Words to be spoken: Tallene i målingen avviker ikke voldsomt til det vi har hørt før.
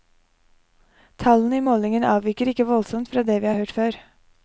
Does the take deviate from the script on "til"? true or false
true